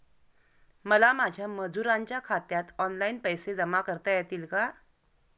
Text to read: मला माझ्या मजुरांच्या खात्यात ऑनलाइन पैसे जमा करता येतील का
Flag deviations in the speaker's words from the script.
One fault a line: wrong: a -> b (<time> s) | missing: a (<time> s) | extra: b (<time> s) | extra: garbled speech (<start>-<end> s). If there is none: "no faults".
no faults